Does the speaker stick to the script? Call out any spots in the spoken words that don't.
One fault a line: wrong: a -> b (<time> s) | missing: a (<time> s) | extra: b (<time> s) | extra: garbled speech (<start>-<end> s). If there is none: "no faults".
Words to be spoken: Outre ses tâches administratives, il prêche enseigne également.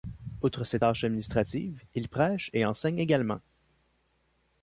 extra: et (2.5 s)